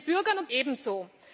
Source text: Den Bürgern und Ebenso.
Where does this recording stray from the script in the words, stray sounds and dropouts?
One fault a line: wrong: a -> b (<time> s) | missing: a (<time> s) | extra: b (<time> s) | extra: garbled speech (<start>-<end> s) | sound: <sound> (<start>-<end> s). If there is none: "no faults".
no faults